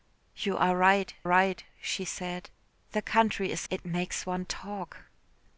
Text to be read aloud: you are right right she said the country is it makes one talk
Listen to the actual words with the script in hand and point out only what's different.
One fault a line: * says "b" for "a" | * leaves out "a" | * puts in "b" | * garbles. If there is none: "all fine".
all fine